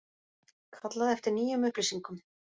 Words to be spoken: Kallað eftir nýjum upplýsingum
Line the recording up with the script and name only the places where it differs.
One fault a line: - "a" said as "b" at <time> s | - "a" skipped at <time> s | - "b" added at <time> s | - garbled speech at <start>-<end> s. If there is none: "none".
none